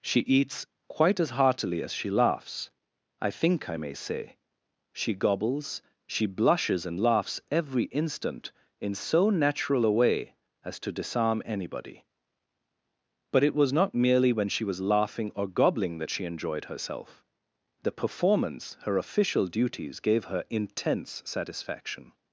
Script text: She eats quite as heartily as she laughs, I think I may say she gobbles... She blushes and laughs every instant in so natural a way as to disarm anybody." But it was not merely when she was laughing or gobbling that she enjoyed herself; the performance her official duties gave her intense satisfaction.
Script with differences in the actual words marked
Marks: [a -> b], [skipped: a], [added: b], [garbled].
She eats quite as heartily as she laughs, I think I may say she gobbles... She blushes and laughs every instant in so natural a way as to disarm anybody." But it was not merely when she was laughing or gobbling that she enjoyed herself; the performance her official duties gave her intense satisfaction.